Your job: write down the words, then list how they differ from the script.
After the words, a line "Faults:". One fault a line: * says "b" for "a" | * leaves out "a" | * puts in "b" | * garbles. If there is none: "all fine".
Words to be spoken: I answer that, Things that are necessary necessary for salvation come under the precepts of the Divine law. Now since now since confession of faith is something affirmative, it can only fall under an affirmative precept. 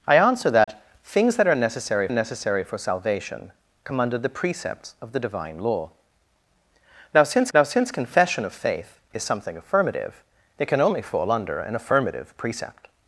I answer that, Things that are necessary necessary for salvation come under the precepts of the Divine law. Now since now since confession of faith is something affirmative, it can only fall under an affirmative precept.
Faults:
all fine